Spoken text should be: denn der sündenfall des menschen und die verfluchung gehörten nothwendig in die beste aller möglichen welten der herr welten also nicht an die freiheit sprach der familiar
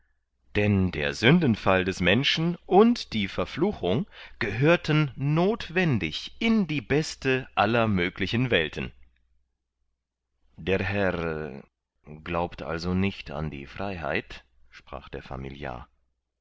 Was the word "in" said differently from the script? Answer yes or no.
no